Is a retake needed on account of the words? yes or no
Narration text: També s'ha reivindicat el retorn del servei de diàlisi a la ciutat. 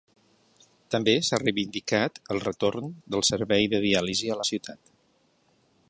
no